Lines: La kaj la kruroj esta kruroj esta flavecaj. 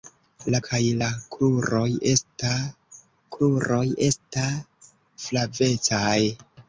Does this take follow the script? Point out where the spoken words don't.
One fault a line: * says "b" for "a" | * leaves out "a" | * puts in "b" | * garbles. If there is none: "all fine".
all fine